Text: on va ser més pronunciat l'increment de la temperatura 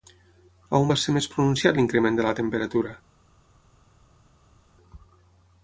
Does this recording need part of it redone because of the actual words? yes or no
no